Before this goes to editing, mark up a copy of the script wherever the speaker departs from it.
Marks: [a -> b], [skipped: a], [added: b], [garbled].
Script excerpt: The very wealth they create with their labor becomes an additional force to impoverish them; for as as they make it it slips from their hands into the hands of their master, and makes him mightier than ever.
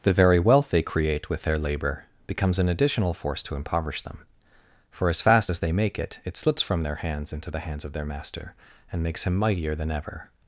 The very wealth they create with their labor becomes an additional force to impoverish them; for as [added: fast] as they make it it slips from their hands into the hands of their master, and makes him mightier than ever.